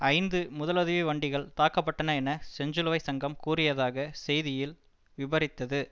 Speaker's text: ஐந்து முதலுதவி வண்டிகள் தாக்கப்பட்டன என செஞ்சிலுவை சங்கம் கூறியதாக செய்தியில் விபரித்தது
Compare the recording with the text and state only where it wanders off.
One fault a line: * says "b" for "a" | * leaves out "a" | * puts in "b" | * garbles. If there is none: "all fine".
all fine